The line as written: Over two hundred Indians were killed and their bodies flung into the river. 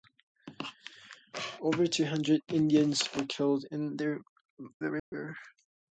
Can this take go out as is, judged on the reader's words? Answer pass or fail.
fail